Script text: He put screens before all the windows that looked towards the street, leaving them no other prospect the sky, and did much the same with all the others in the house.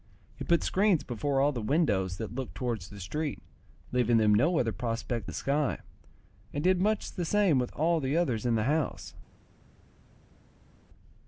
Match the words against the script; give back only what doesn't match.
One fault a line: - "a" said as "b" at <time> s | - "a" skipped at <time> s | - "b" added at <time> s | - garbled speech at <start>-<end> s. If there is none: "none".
none